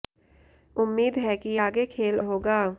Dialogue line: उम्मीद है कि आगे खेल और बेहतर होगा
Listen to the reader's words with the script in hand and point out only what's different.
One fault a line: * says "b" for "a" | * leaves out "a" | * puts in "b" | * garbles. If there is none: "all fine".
* leaves out "और बेहतर"